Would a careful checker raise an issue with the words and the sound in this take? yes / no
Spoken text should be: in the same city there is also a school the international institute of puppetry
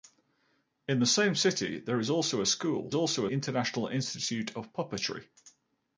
yes